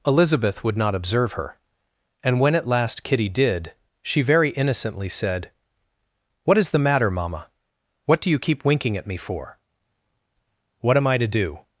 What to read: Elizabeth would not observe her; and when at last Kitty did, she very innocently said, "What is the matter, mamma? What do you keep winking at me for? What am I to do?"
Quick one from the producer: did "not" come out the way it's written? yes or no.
yes